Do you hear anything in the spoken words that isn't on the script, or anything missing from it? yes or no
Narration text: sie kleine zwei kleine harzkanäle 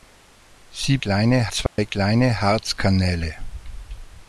no